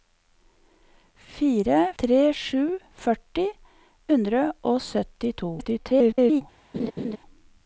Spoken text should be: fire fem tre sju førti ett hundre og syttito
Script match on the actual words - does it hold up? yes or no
no